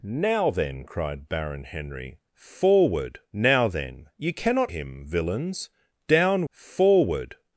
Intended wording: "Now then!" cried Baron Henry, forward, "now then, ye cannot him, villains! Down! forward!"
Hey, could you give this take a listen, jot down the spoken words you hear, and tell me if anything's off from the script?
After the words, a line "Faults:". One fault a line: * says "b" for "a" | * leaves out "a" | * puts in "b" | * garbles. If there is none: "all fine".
"Now then!" cried Baron Henry, forward, "now then, ye cannot him, villains! Down! forward!"
Faults:
all fine